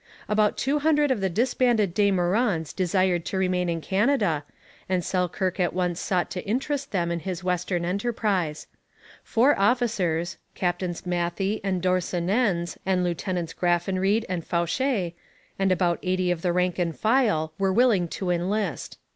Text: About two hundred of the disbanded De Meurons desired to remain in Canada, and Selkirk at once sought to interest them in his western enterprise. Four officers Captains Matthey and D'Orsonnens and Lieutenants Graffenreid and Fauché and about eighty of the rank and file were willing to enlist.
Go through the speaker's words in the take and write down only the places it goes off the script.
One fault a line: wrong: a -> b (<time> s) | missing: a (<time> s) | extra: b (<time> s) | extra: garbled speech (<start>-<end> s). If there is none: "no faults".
no faults